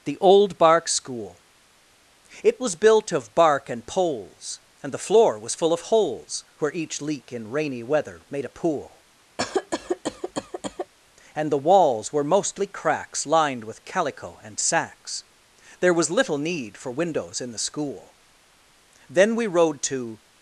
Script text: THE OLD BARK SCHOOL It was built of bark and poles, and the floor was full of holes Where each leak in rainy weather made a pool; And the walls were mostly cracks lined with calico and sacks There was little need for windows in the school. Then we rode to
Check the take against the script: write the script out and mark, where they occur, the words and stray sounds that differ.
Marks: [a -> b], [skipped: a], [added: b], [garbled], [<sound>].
THE OLD BARK SCHOOL It was built of bark and poles, and the floor was full of holes Where each leak in rainy weather made a pool; [cough] And the walls were mostly cracks lined with calico and sacks There was little need for windows in the school. Then we rode to